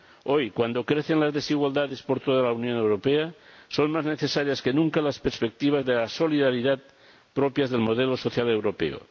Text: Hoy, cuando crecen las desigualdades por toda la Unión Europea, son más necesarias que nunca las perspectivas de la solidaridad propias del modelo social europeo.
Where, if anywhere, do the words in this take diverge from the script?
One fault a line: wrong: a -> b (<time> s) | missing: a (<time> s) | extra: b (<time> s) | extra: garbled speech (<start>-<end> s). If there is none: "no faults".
no faults